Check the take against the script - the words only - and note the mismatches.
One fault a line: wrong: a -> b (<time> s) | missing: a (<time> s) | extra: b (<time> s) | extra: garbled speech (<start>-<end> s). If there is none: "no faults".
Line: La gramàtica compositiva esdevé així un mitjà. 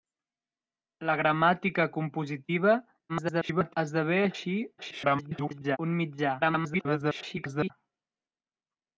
extra: garbled speech (3.1-3.7 s)
extra: garbled speech (4.8-5.8 s)
extra: garbled speech (6.4-7.7 s)